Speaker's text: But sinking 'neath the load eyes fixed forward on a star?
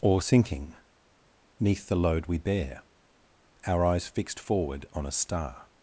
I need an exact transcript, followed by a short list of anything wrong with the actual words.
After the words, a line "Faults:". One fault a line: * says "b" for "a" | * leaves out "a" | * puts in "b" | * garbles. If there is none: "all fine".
Or sinking 'neath the load we bear? Our eyes fixed forward on a star?
Faults:
* says "Or" for "But"
* puts in "we bear Our"